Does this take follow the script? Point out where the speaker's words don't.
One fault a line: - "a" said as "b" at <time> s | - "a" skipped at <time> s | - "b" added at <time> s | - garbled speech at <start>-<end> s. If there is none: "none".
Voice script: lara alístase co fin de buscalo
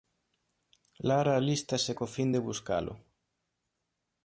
none